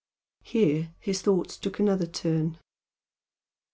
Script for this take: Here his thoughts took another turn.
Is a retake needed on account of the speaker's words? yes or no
no